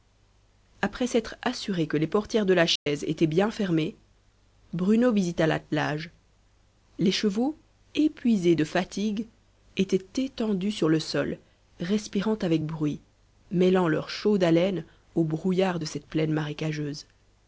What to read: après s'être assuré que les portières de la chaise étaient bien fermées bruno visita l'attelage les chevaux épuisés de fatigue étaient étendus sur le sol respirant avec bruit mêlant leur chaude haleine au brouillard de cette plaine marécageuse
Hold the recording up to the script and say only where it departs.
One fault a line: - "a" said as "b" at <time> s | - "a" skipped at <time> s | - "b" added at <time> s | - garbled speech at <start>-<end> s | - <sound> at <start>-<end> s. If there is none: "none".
- dropout at 2.8-2.9 s